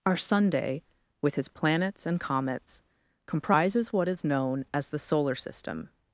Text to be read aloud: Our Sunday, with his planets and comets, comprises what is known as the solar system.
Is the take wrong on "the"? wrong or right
right